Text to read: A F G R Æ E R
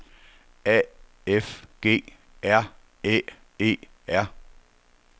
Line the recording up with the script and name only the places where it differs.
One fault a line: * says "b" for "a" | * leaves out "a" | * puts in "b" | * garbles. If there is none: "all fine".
all fine